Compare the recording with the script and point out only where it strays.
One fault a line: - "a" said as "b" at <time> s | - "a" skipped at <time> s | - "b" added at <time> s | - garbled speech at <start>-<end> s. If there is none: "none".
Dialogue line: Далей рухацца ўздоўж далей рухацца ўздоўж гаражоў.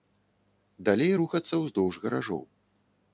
- "далей рухацца ўздоўж" skipped at 1.9 s